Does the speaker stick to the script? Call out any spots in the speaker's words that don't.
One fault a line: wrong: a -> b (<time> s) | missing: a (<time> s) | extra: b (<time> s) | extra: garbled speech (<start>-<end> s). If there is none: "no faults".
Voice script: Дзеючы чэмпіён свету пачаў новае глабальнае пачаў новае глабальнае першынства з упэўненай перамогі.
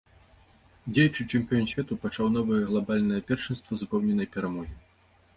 missing: пачаў новае глабальнае (3.2 s)